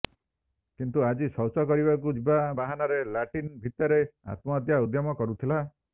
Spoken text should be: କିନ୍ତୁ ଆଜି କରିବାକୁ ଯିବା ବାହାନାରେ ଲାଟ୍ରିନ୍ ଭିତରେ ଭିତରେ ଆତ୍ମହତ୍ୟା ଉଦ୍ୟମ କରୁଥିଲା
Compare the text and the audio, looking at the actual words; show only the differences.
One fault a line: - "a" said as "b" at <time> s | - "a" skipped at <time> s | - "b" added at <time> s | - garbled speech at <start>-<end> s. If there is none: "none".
- "ଶୌଚ" added at 1.4 s
- "ଭିତରେ" skipped at 4.0 s